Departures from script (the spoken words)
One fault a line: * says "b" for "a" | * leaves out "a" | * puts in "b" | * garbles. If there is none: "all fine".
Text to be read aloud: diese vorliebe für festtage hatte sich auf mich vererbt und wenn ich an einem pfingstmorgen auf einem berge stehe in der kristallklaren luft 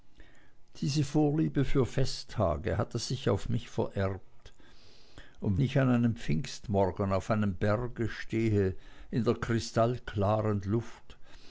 * leaves out "wenn"